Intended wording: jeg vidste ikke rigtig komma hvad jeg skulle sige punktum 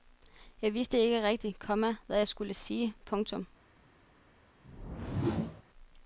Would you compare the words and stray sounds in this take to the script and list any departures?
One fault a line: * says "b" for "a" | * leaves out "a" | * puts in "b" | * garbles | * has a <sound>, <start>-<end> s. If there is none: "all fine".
* has a whoosh, 4.6-5.6 s